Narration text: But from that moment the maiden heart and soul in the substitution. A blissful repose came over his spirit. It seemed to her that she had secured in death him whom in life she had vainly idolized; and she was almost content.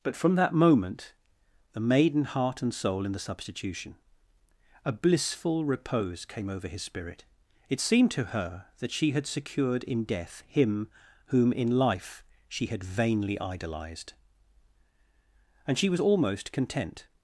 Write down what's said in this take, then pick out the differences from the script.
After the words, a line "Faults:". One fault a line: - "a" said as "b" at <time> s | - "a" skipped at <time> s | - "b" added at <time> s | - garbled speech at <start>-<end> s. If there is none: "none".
But from that moment the maiden heart and soul in the substitution. A blissful repose came over his spirit. It seemed to her that she had secured in death him whom in life she had vainly idolized; and she was almost content.
Faults:
none